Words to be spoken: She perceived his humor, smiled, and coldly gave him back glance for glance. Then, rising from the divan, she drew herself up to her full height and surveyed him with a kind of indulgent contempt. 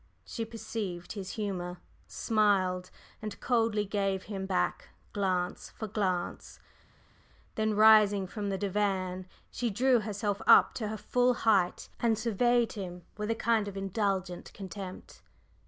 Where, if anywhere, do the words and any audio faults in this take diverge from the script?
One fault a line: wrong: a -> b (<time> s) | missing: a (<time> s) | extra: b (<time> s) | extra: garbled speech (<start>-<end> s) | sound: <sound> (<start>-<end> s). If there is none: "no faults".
no faults